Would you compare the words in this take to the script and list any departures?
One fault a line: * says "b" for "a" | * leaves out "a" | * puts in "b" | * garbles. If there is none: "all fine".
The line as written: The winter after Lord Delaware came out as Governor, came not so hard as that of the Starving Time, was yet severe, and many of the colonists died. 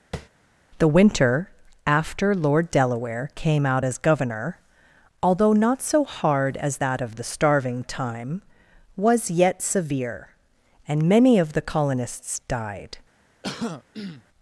* says "although" for "came"